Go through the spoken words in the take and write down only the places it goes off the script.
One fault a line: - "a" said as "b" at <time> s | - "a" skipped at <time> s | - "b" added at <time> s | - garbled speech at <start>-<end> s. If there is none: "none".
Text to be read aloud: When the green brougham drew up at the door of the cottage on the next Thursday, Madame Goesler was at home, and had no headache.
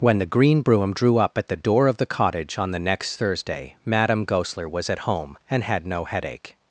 none